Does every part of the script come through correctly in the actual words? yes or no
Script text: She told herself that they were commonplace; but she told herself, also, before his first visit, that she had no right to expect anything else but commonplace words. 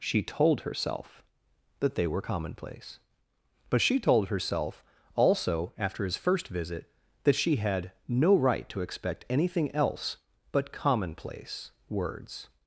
no